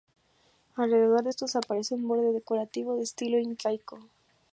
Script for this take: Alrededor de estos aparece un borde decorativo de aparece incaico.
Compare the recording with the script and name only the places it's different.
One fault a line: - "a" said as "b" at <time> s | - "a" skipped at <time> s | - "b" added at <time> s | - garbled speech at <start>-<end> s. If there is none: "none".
- "aparece" said as "estilo" at 3.0 s